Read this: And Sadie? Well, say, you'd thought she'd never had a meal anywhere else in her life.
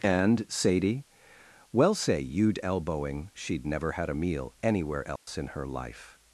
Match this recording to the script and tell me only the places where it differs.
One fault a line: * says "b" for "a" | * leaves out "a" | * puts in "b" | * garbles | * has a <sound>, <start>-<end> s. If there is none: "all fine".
* says "elbowing" for "thought"
* has a dropout, 5.2-5.3 s